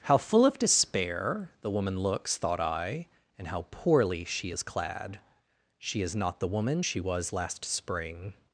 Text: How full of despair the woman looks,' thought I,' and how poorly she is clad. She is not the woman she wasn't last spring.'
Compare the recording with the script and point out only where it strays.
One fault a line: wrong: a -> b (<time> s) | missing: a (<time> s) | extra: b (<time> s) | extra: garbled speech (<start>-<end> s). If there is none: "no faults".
wrong: wasn't -> was (7.0 s)